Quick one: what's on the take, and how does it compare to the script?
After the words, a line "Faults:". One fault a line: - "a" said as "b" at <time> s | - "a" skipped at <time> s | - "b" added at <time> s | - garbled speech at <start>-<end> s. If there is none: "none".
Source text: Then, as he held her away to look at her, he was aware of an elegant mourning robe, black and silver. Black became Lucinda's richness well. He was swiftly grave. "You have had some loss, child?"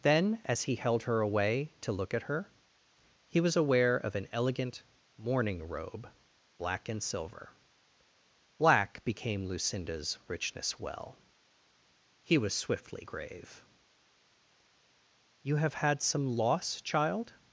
Then, as he held her away to look at her, he was aware of an elegant mourning robe, black and silver. Black became Lucinda's richness well. He was swiftly grave. "You have had some loss, child?"
Faults:
none